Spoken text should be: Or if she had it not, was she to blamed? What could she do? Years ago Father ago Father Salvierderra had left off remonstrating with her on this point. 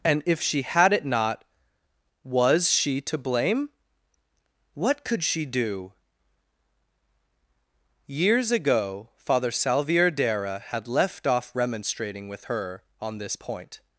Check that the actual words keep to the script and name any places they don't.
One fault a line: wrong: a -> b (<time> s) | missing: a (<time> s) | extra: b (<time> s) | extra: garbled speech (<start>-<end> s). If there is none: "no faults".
wrong: Or -> And (0.0 s)
wrong: blamed -> blame (3.2 s)
missing: ago Father (9.5 s)